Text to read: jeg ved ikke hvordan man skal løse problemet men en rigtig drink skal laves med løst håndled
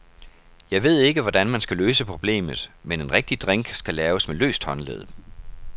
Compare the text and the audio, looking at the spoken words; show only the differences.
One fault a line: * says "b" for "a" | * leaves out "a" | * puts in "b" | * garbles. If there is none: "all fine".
all fine